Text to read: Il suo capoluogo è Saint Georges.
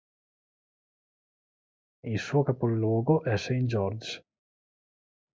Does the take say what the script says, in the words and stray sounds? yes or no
yes